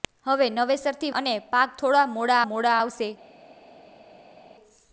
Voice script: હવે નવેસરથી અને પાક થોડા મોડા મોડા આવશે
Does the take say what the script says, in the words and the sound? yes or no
yes